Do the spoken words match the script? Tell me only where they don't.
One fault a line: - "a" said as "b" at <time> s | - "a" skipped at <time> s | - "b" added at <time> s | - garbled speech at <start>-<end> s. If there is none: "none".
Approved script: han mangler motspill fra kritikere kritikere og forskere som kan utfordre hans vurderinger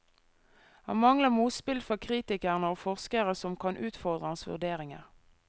- "kritikere" skipped at 2.7 s